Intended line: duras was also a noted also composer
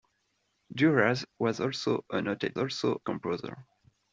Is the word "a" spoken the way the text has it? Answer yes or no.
yes